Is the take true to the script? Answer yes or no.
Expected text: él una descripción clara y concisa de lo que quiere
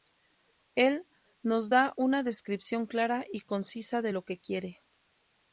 no